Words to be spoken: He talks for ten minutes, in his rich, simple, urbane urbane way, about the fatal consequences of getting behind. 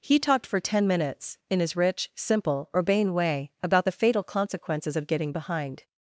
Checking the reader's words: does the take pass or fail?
fail